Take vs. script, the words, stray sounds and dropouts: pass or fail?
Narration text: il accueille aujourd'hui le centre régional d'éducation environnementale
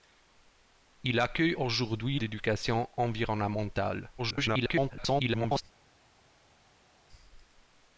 fail